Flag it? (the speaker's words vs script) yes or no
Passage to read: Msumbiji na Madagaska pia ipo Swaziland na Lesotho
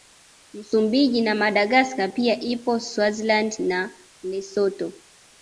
no